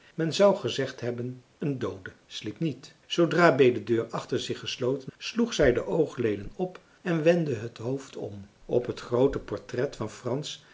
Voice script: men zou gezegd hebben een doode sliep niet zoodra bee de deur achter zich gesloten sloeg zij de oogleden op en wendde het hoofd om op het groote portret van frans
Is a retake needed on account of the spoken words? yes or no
no